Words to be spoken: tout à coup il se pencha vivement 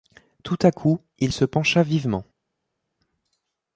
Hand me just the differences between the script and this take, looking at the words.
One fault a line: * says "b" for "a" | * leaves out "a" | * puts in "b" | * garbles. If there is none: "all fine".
all fine